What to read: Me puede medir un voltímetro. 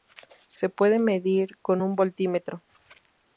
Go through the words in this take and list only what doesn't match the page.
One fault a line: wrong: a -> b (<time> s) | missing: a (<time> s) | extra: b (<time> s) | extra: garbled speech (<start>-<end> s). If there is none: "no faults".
wrong: Me -> Se (0.5 s)
extra: con (1.6 s)